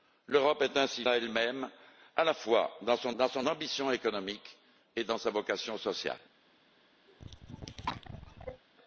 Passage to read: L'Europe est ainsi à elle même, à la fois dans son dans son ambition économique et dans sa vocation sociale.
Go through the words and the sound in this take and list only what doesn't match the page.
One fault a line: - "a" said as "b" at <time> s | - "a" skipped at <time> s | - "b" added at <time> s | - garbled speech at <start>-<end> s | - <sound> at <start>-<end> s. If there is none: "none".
- cough at 7.1-8.6 s